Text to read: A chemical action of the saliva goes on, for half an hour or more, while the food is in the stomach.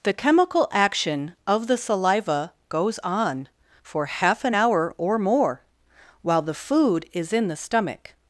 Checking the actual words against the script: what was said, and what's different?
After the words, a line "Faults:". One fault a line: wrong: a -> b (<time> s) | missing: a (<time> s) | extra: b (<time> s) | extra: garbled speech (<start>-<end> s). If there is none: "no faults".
The chemical action of the saliva goes on, for half an hour or more, while the food is in the stomach.
Faults:
wrong: A -> The (0.0 s)